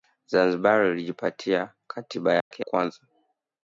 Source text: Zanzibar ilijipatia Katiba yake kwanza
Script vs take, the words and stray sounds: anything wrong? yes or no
yes